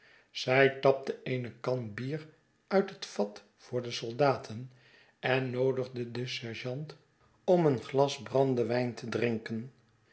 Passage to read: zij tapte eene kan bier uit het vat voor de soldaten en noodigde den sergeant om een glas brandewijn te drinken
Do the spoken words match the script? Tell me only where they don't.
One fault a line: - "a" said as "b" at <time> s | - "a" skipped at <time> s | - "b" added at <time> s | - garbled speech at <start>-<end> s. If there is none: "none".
none